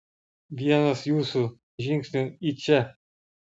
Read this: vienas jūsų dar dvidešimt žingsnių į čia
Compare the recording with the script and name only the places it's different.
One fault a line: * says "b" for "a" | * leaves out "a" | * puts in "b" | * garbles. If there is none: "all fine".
* leaves out "dar dvidešimt"